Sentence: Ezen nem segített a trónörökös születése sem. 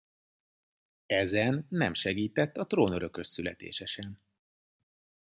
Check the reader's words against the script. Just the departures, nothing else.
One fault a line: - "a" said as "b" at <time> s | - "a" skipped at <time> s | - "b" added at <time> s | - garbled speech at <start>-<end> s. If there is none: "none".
none